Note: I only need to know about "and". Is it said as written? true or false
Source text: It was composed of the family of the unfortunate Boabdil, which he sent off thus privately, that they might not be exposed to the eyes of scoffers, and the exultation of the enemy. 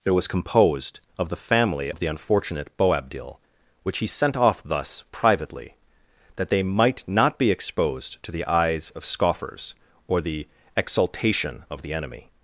false